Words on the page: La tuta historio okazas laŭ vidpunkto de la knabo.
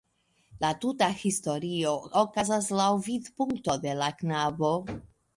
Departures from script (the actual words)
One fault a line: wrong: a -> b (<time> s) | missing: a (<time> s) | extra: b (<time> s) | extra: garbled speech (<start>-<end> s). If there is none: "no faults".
no faults